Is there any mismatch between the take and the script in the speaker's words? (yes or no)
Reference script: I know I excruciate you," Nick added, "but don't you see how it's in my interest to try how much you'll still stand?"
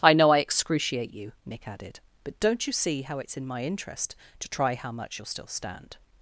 no